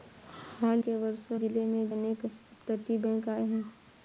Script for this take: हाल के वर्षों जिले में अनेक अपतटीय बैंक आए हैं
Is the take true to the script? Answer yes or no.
yes